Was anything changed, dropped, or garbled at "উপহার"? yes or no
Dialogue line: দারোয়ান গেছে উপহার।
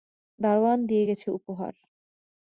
no